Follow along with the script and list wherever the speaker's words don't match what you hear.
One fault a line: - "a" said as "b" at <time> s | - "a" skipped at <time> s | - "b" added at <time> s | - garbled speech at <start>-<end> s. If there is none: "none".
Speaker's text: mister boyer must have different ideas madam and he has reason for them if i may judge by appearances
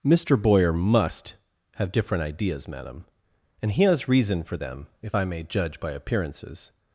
none